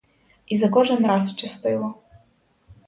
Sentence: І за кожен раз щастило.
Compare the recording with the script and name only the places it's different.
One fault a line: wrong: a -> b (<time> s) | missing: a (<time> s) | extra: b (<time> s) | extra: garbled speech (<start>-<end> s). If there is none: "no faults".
no faults